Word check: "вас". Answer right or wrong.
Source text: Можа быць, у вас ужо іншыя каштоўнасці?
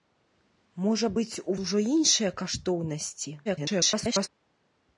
wrong